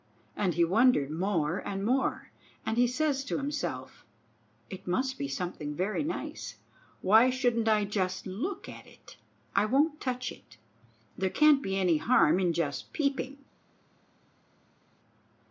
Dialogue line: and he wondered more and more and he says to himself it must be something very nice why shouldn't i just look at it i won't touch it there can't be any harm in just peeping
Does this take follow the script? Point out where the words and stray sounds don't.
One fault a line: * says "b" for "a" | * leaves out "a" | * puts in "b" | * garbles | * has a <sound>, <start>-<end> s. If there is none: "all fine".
all fine